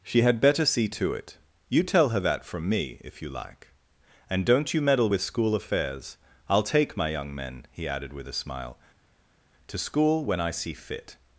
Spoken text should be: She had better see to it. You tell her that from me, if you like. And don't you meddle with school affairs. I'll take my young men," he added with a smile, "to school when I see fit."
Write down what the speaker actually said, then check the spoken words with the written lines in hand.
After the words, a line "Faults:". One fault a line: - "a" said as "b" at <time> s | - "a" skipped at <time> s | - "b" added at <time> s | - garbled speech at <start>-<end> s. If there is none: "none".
She had better see to it. You tell her that from me, if you like. And don't you meddle with school affairs. I'll take my young men," he added with a smile, "to school when I see fit."
Faults:
none